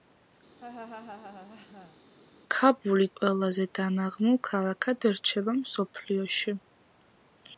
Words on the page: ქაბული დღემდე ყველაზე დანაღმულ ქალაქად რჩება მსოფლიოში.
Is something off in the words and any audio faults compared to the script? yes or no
yes